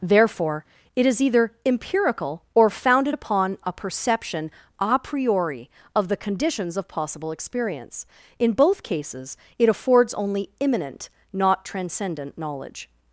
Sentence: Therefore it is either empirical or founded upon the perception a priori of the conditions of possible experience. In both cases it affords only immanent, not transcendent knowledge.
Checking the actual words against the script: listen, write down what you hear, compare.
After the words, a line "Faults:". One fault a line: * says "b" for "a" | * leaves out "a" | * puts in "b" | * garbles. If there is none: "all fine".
Therefore it is either empirical or founded upon a perception a priori of the conditions of possible experience. In both cases it affords only immanent, not transcendent knowledge.
Faults:
* says "a" for "the"